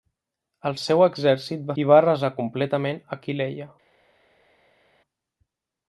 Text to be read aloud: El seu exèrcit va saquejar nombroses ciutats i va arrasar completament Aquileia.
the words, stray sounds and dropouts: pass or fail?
fail